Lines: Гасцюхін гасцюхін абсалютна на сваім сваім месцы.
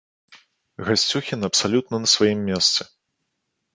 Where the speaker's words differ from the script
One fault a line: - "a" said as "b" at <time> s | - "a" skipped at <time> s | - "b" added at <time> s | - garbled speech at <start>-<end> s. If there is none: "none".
- "гасцюхін" skipped at 1.5 s
- "сваім" skipped at 2.4 s